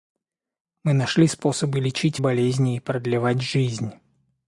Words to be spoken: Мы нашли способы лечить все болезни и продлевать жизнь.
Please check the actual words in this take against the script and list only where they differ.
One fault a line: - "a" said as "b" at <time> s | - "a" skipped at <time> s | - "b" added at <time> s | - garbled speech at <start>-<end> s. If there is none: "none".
- "все" skipped at 2.2 s